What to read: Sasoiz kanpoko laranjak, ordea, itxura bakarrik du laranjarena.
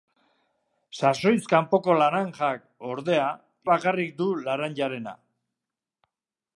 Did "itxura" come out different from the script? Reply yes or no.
yes